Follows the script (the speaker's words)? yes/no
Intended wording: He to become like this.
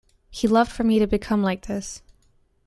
no